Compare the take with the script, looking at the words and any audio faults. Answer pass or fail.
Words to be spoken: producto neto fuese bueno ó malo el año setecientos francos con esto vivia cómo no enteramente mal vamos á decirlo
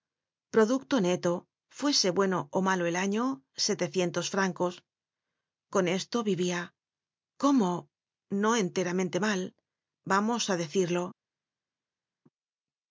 pass